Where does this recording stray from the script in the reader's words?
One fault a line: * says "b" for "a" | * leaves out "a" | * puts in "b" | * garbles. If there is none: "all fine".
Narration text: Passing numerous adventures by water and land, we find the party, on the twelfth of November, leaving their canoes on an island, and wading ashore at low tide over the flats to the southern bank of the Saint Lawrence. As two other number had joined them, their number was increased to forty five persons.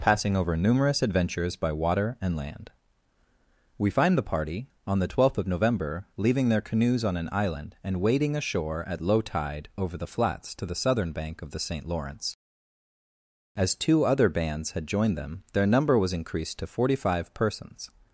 * puts in "over"
* says "bands" for "number"